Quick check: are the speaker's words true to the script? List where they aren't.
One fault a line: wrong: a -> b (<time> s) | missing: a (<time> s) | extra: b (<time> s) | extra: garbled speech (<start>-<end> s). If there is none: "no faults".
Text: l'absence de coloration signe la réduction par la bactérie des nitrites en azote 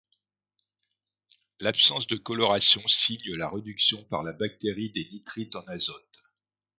no faults